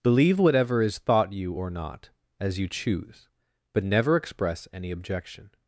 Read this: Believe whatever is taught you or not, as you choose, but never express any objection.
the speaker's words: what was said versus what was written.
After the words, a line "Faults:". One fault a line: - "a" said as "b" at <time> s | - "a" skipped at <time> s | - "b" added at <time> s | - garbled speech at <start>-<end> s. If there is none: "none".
Believe whatever is thought you or not, as you choose, but never express any objection.
Faults:
- "taught" said as "thought" at 1.0 s